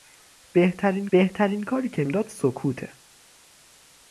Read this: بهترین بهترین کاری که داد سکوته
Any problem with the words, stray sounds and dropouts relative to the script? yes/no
no